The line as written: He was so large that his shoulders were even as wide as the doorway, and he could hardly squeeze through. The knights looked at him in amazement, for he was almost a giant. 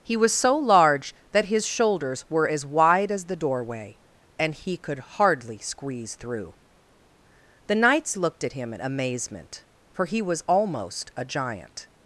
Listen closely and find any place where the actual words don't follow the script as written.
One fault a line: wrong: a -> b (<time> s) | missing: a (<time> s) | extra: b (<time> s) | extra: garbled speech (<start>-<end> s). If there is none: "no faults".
missing: even (2.5 s)